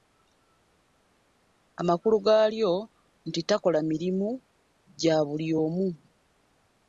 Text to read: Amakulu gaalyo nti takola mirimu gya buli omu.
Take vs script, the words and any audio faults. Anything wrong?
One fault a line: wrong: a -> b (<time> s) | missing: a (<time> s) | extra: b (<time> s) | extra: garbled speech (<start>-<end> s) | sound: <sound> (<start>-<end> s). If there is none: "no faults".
no faults